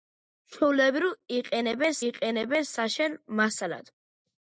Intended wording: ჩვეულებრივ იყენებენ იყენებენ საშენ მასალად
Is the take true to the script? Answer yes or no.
yes